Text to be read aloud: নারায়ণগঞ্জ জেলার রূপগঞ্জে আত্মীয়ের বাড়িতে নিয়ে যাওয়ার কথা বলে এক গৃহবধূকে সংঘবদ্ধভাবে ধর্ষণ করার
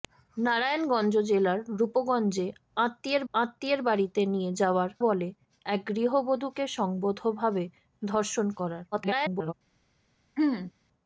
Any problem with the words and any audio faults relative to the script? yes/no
yes